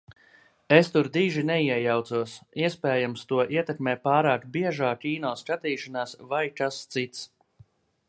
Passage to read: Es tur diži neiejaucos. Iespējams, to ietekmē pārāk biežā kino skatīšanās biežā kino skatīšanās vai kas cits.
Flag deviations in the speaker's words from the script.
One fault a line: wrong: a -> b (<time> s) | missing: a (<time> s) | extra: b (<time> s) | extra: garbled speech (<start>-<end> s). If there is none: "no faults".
missing: biežā kino skatīšanās (6.1 s)